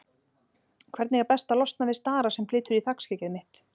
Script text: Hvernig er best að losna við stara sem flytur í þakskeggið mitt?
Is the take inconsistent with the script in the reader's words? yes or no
no